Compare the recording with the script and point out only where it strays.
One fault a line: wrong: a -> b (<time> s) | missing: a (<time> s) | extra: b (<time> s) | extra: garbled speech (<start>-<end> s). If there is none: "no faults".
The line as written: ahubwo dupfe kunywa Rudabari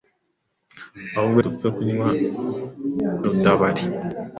no faults